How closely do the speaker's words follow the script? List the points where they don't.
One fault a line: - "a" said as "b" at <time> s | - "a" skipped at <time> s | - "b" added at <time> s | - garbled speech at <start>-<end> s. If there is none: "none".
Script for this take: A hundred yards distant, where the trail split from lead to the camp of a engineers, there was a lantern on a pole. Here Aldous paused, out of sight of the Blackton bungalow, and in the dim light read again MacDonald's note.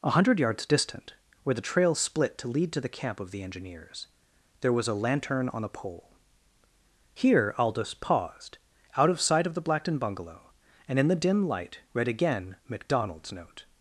- "from" said as "to" at 2.4 s
- "a" said as "the" at 3.3 s